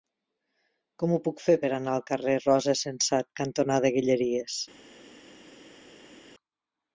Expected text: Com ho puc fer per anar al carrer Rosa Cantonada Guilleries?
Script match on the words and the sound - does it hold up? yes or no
no